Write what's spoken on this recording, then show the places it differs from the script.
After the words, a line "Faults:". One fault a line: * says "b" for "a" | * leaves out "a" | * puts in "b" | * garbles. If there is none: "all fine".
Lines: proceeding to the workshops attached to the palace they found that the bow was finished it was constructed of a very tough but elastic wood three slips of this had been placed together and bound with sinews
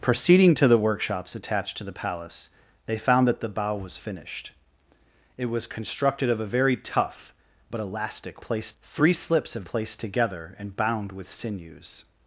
proceeding to the workshops attached to the palace they found that the bow was finished it was constructed of a very tough but elastic placed three slips of placed together and bound with sinews
Faults:
* says "placed" for "wood"
* leaves out "this had been"